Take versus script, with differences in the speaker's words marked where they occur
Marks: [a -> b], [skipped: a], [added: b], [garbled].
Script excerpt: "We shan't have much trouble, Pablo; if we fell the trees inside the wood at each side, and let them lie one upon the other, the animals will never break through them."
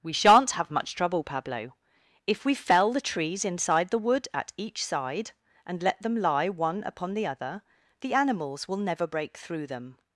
"We shan't have much trouble, Pablo; if we fell the trees inside the wood at each side, and let them lie one upon the other, the animals will never break through them."